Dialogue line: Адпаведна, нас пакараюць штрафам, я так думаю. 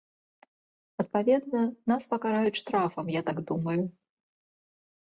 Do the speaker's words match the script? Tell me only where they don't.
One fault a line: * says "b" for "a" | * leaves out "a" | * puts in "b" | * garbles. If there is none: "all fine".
all fine